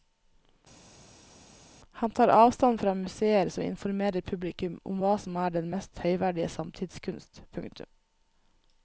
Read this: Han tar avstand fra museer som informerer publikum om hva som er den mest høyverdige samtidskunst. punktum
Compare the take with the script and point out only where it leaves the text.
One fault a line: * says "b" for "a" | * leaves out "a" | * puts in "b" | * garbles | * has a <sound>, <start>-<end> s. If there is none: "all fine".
all fine